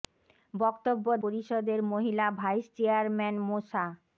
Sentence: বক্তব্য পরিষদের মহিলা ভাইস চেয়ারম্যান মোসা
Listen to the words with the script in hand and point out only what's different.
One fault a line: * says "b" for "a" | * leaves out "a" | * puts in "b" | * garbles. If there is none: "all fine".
all fine